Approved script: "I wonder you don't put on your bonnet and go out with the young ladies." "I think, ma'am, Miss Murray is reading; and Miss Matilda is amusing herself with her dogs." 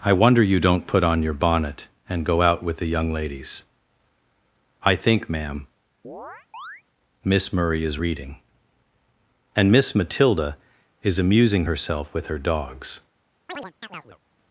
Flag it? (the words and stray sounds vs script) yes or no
yes